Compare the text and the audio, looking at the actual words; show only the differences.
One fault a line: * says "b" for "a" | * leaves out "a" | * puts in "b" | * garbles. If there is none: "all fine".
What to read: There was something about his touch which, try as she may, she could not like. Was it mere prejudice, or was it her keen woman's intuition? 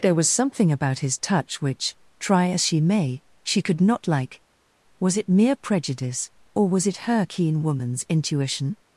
all fine